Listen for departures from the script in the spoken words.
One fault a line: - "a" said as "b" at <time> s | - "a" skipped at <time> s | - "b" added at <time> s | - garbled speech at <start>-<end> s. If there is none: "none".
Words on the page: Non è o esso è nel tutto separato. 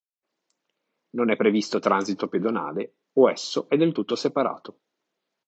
- "previsto transito pedonale" added at 1.4 s
- "nel" said as "del" at 3.8 s